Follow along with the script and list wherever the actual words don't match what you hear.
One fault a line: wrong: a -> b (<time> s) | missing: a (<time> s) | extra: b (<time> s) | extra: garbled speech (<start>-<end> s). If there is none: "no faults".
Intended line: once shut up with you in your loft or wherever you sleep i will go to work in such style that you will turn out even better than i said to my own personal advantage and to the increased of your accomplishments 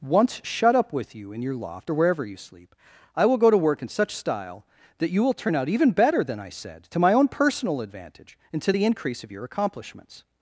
wrong: increased -> increase (8.8 s)